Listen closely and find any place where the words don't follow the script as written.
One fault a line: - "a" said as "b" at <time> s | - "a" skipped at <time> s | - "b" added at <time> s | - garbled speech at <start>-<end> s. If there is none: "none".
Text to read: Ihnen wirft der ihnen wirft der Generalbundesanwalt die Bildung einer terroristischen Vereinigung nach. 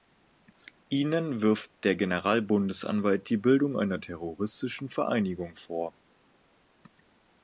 - "ihnen wirft der" skipped at 1.9 s
- "nach" said as "vor" at 5.5 s